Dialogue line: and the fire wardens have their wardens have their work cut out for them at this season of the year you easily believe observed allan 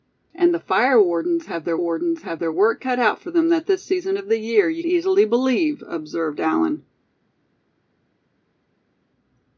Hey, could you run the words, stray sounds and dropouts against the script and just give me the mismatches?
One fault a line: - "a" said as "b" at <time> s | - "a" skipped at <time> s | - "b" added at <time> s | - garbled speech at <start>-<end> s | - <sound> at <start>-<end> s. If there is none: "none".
none